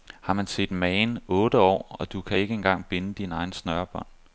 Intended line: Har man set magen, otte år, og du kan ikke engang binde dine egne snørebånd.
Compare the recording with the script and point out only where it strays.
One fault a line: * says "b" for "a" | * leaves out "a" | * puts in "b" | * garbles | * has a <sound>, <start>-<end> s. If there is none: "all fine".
all fine